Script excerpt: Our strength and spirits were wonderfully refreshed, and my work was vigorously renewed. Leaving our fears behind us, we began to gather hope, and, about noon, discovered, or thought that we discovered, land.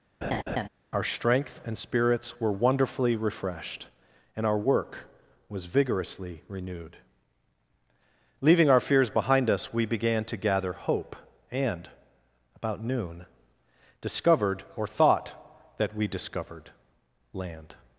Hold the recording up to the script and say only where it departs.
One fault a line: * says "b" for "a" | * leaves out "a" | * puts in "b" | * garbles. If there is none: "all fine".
* says "our" for "my"